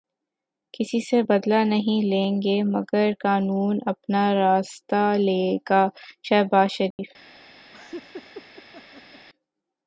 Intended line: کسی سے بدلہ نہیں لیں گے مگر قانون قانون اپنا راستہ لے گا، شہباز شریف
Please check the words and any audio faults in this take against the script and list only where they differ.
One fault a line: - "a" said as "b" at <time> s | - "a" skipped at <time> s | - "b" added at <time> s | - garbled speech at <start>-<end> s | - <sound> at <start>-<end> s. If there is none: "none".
- "قانون" skipped at 3.8 s
- dropout at 6.9-7.0 s
- laugh at 7.7-9.3 s